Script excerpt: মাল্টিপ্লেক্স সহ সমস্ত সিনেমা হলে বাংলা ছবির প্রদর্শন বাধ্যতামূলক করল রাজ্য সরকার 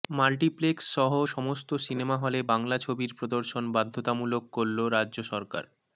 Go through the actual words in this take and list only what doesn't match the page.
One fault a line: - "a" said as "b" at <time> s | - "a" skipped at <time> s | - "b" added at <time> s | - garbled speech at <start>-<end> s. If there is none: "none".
none